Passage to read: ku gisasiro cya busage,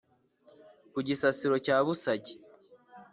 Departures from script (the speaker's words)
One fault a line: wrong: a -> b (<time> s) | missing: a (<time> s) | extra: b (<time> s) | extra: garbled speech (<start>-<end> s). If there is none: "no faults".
no faults